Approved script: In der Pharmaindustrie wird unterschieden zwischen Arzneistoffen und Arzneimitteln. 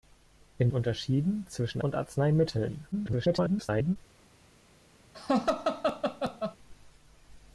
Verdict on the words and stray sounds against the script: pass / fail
fail